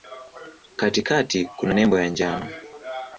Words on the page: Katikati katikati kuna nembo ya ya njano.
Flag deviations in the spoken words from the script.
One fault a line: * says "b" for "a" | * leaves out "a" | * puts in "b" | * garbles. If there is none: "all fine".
* leaves out "katikati"
* leaves out "ya"